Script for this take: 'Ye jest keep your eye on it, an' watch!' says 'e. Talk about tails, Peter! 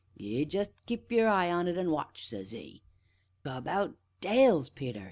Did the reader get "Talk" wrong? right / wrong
wrong